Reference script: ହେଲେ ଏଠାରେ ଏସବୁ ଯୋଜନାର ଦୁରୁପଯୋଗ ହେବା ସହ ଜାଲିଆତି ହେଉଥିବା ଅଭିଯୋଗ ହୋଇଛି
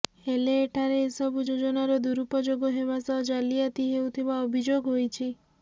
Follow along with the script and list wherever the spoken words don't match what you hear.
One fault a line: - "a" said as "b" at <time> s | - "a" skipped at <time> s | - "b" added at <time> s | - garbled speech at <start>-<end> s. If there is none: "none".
none